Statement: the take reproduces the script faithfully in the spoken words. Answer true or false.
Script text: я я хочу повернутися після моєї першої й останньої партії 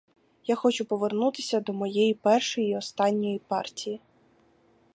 false